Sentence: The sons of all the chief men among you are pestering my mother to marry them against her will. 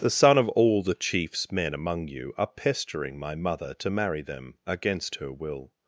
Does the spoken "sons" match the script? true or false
false